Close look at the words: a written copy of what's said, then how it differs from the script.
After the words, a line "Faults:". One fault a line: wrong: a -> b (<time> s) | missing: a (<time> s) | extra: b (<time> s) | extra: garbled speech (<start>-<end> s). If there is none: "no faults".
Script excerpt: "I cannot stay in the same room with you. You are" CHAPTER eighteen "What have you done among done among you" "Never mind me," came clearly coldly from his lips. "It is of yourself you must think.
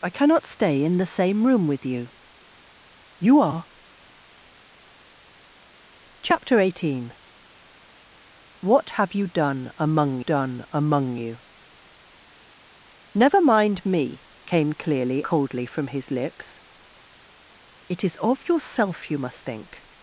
"I cannot stay in the same room with you. You are" CHAPTER eighteen "What have you done among done among you" "Never mind me," came clearly coldly from his lips. "It is of yourself you must think.
Faults:
no faults